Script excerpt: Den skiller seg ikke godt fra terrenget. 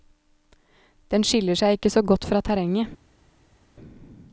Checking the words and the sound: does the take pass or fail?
fail